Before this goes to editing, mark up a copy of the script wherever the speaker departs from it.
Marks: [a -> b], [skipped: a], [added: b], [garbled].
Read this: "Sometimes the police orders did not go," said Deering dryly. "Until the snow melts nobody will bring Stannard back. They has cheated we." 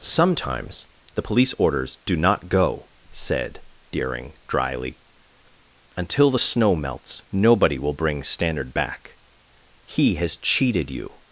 "Sometimes the police orders [did -> do] not go," said Deering dryly. "Until the snow melts nobody will bring Stannard back. [They -> He] has cheated [we." -> you]